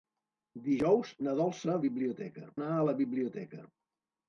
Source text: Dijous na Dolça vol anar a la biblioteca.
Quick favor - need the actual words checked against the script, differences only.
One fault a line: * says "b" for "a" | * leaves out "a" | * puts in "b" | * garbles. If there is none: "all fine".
* says "biblioteca" for "vol"